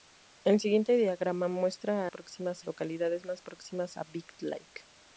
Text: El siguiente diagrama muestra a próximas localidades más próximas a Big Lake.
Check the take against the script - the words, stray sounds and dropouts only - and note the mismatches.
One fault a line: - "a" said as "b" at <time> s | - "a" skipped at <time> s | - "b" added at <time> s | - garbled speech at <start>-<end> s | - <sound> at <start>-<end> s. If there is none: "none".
none